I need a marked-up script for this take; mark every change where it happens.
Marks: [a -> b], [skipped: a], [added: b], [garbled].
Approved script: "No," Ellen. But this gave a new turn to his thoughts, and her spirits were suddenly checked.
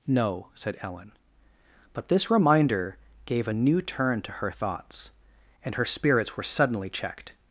"No," [added: said] Ellen. But this [added: reminder] gave a new turn to [his -> her] thoughts, and her spirits were suddenly checked.